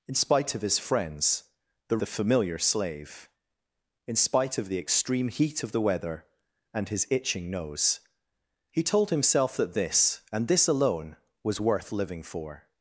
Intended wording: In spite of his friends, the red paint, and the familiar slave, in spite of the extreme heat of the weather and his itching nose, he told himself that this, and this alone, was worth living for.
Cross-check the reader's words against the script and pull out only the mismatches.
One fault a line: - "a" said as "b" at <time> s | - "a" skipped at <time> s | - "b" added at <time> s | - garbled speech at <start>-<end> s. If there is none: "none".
- "red paint and" skipped at 2.0 s